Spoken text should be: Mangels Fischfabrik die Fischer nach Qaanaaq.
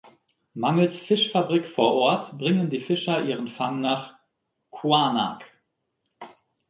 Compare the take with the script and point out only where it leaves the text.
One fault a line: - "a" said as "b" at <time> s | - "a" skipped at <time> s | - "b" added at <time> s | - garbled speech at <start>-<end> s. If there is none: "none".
- "vor Ort bringen" added at 1.7 s
- "ihren Fang" added at 3.2 s